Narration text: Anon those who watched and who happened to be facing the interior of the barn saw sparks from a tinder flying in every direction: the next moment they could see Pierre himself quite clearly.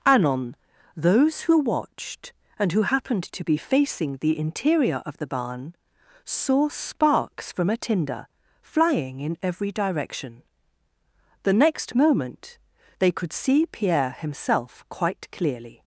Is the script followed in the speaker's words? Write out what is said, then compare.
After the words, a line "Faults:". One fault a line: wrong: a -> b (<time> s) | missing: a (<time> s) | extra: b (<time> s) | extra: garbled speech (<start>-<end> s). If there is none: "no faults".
Anon those who watched and who happened to be facing the interior of the barn saw sparks from a tinder flying in every direction: the next moment they could see Pierre himself quite clearly.
Faults:
no faults